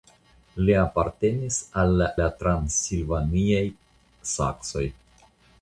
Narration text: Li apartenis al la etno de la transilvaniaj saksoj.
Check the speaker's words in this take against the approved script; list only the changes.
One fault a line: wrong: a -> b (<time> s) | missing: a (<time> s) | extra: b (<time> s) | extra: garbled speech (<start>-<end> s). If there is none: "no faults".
missing: etno de (2.1 s)